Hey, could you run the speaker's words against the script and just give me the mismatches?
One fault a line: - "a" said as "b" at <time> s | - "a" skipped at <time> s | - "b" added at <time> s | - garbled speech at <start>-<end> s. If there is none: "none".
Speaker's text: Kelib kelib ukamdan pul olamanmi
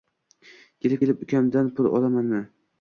none